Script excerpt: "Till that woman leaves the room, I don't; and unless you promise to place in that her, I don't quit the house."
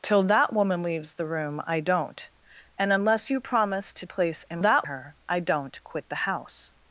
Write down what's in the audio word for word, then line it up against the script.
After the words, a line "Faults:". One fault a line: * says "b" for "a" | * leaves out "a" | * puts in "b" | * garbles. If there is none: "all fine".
"Till that woman leaves the room, I don't; and unless you promise to place in that her, I don't quit the house."
Faults:
all fine